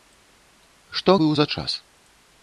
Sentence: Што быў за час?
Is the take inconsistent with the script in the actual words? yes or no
no